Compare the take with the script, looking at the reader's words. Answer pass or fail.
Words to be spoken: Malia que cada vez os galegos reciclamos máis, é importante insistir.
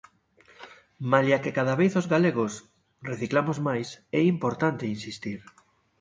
pass